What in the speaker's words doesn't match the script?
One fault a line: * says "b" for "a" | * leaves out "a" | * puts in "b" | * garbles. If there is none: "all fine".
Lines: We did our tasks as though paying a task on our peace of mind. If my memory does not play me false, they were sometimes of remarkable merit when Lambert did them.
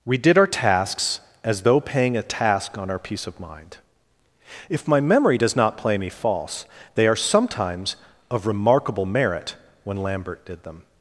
* says "are" for "were"